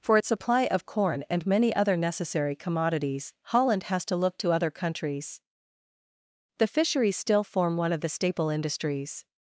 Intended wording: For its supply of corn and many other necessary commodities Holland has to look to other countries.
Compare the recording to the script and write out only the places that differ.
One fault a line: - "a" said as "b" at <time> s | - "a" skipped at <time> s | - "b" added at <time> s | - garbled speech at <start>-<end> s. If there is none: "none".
- "The fisheries still form one of the staple industries" added at 6.6 s